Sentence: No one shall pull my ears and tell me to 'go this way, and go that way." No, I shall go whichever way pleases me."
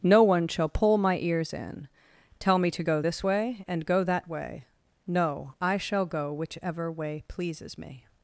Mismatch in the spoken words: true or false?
true